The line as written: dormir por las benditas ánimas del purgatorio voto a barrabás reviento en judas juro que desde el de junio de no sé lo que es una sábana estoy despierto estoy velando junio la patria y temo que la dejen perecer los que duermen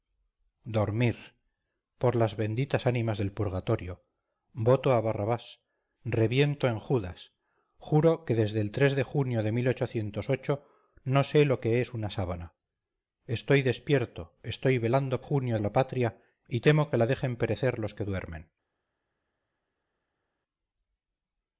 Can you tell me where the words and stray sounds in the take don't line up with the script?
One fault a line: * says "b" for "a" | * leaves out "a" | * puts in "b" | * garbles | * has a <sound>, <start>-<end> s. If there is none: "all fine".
all fine